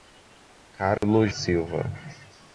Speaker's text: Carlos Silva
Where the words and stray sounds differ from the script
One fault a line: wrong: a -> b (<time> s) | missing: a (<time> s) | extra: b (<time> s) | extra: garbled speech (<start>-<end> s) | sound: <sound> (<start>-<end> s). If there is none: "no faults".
sound: dropout (1.0-1.0 s)